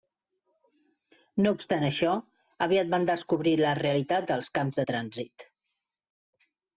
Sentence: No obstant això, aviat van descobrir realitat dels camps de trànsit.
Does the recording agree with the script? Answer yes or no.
no